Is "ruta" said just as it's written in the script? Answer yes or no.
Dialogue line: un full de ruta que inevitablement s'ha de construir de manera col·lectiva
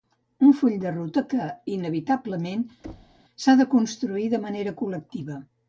yes